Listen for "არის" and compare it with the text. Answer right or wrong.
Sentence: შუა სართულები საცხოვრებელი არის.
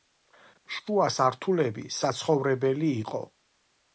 wrong